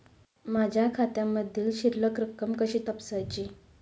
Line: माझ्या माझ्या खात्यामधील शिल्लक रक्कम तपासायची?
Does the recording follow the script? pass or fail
fail